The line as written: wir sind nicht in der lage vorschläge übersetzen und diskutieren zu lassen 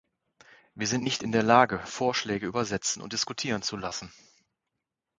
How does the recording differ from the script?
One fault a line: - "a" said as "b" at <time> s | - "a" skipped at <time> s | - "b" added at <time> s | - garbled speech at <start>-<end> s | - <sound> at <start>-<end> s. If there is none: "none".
none